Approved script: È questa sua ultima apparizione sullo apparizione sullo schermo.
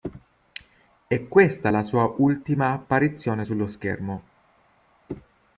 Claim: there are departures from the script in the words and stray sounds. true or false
true